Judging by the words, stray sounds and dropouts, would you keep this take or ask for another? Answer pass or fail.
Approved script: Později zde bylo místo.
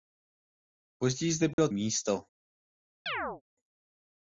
fail